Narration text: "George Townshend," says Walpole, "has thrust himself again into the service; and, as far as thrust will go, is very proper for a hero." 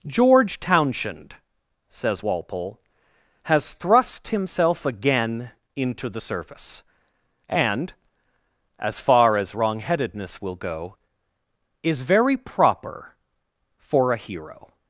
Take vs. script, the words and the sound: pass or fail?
fail